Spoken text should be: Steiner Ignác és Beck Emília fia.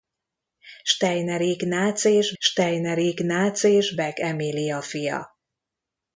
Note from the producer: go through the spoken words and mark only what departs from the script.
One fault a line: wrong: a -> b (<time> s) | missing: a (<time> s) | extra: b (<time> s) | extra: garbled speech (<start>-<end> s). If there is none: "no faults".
extra: steiner Ignác és (2.4 s)